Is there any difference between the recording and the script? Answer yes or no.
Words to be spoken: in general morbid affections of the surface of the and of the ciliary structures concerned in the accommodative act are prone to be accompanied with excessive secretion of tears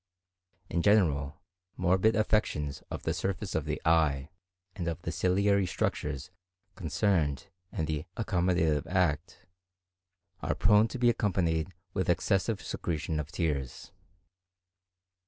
yes